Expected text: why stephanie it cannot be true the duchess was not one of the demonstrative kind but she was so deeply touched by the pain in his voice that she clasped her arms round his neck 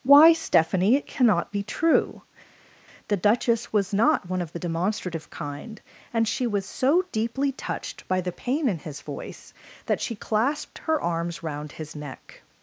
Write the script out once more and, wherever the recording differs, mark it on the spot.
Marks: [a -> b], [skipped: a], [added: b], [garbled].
why stephanie it cannot be true the duchess was not one of the demonstrative kind [but -> and] she was so deeply touched by the pain in his voice that she clasped her arms round his neck